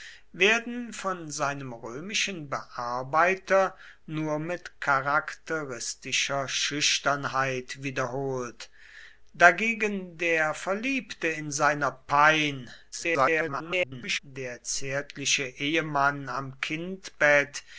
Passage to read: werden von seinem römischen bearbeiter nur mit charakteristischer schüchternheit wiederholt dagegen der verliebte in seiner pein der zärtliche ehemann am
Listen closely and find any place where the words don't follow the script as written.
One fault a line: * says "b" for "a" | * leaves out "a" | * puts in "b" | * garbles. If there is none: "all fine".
* garbles